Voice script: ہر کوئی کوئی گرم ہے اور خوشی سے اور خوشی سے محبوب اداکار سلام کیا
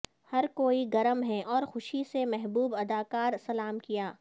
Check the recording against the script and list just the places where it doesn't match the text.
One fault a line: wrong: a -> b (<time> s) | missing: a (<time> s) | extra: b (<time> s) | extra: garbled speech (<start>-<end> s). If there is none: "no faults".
missing: کوئی (0.8 s)
missing: اور خوشی سے (2.2 s)